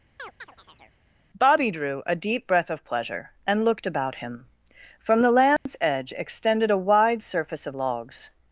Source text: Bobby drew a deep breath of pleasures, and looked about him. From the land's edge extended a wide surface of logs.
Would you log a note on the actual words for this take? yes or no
yes